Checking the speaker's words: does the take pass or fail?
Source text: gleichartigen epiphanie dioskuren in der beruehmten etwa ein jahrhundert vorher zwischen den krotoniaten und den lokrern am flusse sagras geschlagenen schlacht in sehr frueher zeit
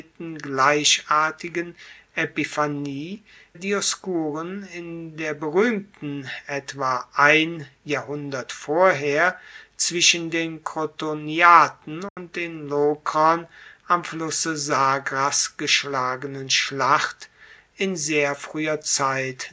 pass